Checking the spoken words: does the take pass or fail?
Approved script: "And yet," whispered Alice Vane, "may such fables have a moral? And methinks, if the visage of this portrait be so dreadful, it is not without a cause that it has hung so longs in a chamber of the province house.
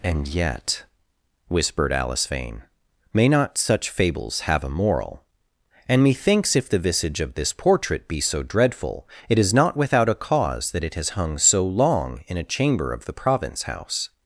fail